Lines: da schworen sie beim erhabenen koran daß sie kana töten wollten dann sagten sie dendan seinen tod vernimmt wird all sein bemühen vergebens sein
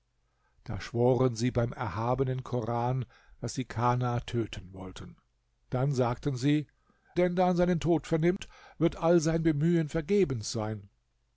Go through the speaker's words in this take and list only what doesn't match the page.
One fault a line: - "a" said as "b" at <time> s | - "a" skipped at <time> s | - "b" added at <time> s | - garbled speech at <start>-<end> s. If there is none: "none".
none